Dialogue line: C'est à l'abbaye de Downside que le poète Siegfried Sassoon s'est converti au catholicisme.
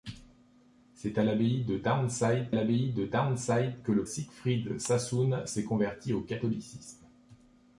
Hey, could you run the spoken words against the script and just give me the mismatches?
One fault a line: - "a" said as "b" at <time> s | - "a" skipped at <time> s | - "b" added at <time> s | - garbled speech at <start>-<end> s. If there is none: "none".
- "l'abbaye de Downside" added at 2.5 s
- "poète" skipped at 4.0 s